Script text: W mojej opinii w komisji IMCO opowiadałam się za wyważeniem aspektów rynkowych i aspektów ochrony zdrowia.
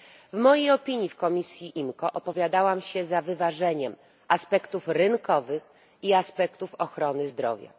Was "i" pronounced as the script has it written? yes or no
yes